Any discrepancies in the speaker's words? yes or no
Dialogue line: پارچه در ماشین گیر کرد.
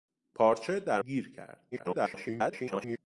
yes